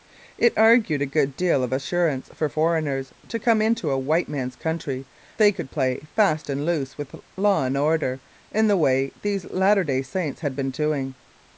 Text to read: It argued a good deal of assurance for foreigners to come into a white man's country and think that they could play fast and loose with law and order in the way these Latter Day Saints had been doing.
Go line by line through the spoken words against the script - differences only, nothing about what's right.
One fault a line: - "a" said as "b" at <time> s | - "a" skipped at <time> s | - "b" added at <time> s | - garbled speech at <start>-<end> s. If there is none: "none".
- "and think that" skipped at 5.1 s